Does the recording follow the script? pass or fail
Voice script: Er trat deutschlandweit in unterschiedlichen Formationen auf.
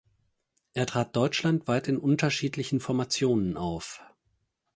pass